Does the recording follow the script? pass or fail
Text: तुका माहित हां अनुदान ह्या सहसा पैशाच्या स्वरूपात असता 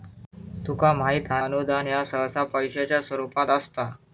pass